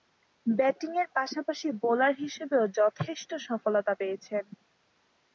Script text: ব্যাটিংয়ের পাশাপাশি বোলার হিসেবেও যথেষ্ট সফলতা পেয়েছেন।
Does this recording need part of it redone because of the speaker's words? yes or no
no